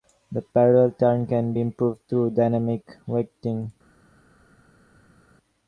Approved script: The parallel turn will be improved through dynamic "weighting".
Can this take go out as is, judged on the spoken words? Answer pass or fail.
fail